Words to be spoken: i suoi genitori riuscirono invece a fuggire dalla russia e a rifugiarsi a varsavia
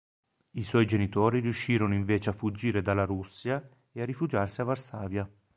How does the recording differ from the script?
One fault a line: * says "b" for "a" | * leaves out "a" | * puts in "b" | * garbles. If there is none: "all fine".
all fine